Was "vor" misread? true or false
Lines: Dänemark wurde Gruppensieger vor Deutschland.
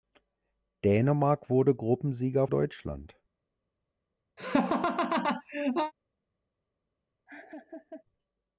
true